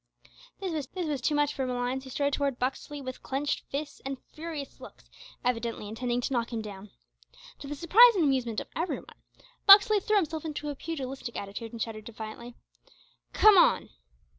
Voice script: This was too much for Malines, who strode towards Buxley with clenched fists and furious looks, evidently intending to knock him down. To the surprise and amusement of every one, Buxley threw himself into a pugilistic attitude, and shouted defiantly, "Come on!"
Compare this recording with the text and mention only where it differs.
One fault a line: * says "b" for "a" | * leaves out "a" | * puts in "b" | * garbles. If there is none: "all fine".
* puts in "this was"